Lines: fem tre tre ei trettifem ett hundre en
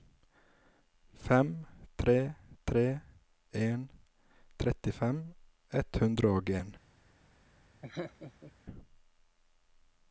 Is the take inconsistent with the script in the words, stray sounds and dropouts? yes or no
yes